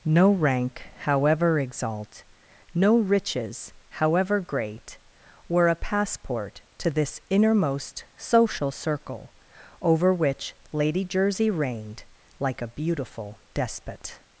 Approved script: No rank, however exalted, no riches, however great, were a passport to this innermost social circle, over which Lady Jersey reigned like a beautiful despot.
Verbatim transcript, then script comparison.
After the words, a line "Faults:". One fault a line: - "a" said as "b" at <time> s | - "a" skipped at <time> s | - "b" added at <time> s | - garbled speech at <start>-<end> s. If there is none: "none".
No rank, however exalt, no riches, however great, were a passport to this innermost social circle, over which Lady Jersey reigned like a beautiful despot.
Faults:
- "exalted" said as "exalt" at 1.6 s